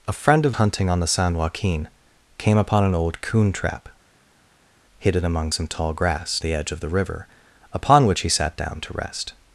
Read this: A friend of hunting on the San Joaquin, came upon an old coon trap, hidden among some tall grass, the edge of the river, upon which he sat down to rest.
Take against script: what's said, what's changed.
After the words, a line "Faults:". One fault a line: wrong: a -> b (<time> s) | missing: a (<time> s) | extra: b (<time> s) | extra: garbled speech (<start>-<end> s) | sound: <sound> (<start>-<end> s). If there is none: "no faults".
A friend of hunting on the San Joaquin, came upon an old coon trap, hidden among some tall grass, the edge of the river, upon which he sat down to rest.
Faults:
no faults